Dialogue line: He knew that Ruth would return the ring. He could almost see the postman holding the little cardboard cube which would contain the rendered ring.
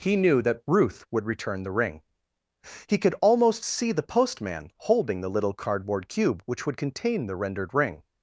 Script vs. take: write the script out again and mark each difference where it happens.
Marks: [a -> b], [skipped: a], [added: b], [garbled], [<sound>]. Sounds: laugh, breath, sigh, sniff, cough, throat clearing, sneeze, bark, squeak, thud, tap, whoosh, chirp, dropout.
He knew that Ruth would return the ring. He could almost see the postman holding the little cardboard cube which would contain the rendered ring.